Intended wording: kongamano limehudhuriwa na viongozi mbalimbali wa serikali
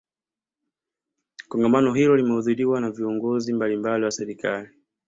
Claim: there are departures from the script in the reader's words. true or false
true